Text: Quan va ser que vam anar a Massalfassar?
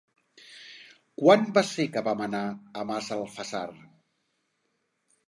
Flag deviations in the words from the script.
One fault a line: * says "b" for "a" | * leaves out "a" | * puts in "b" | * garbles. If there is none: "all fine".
all fine